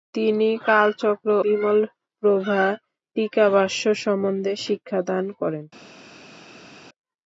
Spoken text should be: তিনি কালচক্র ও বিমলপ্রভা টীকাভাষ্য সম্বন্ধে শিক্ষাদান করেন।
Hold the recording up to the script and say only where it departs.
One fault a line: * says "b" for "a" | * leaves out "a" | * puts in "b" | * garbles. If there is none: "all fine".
* leaves out "ও"